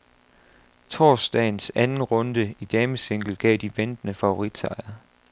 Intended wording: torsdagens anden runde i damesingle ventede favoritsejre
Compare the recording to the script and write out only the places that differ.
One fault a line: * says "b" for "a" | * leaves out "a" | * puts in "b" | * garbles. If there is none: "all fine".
* puts in "gav de"